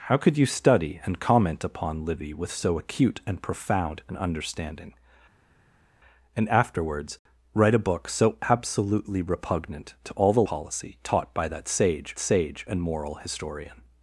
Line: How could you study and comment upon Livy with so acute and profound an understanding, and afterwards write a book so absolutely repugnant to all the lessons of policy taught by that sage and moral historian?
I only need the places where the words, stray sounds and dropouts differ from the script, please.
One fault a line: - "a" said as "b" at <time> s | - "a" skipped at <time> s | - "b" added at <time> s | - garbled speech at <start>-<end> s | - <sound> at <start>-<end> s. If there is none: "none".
- "lessons of" skipped at 10.4 s
- "sage" added at 12.2 s